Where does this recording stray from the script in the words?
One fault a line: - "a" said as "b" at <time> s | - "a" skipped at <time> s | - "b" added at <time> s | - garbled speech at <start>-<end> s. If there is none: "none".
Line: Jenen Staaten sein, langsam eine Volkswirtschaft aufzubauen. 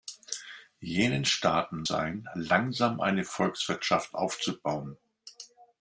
none